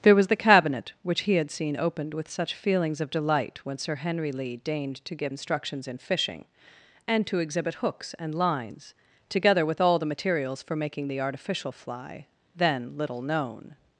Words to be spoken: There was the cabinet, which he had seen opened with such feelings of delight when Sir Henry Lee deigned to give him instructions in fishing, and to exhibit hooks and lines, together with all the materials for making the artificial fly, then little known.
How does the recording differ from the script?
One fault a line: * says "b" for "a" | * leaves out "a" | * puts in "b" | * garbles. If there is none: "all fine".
* leaves out "him"